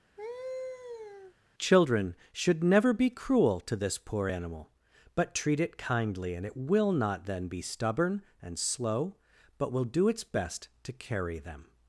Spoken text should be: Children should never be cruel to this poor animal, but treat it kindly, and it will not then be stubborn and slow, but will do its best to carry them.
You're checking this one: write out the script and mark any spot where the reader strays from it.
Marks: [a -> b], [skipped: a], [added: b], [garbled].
Children should never be cruel to this poor animal, but treat it kindly, and it will not then be stubborn and slow, but will do its best to carry them.